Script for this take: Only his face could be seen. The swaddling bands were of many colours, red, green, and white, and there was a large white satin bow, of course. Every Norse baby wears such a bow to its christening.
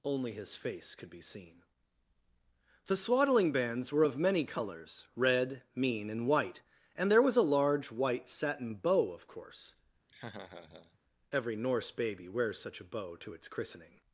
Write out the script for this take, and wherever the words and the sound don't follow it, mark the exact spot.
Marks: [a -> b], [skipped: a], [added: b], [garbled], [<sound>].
Only his face could be seen. The swaddling bands were of many colours, red, [green, -> mean] and white, and there was a large white satin bow, of course. [laugh] Every Norse baby wears such a bow to its christening.